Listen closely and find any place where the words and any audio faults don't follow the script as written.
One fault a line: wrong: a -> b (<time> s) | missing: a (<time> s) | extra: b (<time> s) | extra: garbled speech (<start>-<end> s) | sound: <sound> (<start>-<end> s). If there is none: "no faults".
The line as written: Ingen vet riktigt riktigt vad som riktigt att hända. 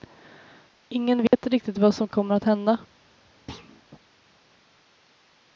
sound: dropout (1.3-1.3 s)
missing: riktigt (1.8 s)
wrong: riktigt -> kommer (2.1 s)
sound: thud (3.5-3.8 s)